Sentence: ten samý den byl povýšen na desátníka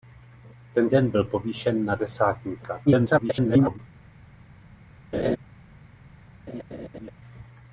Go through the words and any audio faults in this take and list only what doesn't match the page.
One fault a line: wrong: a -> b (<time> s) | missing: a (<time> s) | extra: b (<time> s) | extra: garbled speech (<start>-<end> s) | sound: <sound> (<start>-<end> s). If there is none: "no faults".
missing: samý (0.9 s)
extra: garbled speech (2.9-3.8 s)
sound: laugh (5.1-5.4 s)
sound: laugh (6.5-7.1 s)